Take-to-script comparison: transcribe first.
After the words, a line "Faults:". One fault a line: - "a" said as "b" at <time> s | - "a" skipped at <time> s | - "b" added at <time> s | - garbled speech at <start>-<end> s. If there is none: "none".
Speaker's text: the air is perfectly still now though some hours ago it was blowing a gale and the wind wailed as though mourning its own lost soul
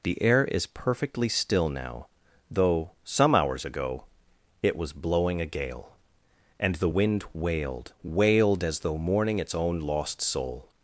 the air is perfectly still now though some hours ago it was blowing a gale and the wind wailed wailed as though mourning its own lost soul
Faults:
- "wailed" added at 8.0 s